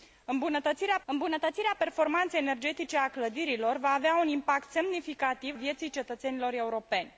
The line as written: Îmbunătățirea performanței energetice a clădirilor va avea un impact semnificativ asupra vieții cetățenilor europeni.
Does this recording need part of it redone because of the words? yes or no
yes